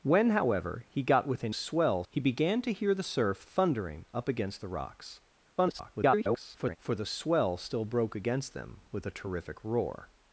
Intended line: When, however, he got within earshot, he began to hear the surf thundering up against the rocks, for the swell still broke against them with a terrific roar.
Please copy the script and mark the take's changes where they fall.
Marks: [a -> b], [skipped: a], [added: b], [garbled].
When, however, he got within [earshot, -> swell] he began to hear the surf thundering up against the rocks, [garbled] for the swell still broke against them with a terrific roar.